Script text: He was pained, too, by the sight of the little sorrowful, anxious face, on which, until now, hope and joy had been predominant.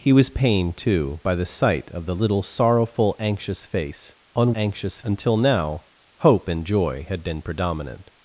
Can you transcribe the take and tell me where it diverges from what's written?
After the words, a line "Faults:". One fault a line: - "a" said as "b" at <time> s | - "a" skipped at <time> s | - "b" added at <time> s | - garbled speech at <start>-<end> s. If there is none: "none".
He was pained, too, by the sight of the little sorrowful, anxious face, on anxious, until now, hope and joy had been predominant.
Faults:
- "which" said as "anxious" at 4.5 s